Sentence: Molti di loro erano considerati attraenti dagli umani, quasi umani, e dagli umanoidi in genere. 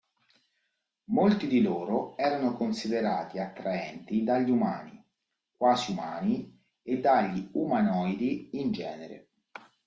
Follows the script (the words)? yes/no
yes